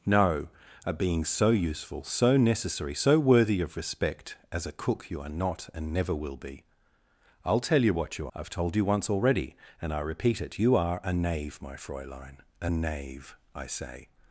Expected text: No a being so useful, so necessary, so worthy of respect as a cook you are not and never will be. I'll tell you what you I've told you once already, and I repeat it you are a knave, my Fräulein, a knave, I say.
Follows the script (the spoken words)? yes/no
yes